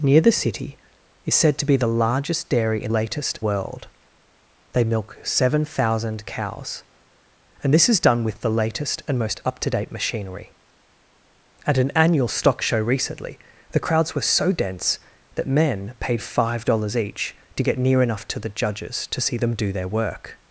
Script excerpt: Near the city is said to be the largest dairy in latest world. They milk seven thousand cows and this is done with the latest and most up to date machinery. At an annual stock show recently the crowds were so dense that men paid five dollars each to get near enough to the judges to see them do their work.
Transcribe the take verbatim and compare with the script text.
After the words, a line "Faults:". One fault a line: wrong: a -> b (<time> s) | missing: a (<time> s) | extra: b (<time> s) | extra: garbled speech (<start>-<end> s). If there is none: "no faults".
Near the city is said to be the largest dairy in latest world. They milk seven thousand cows and this is done with the latest and most up to date machinery. At an annual stock show recently the crowds were so dense that men paid five dollars each to get near enough to the judges to see them do their work.
Faults:
no faults